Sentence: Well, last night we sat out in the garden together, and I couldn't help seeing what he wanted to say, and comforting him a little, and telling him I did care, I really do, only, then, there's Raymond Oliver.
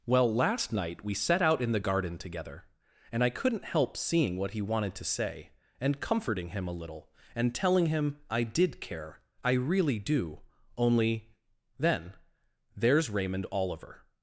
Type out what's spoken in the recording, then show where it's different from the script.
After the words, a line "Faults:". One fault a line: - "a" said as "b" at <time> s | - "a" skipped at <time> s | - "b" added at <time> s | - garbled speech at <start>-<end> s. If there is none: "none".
Well, last night we set out in the garden together, and I couldn't help seeing what he wanted to say, and comforting him a little, and telling him I did care, I really do, only, then, there's Raymond Oliver.
Faults:
- "sat" said as "set" at 1.1 s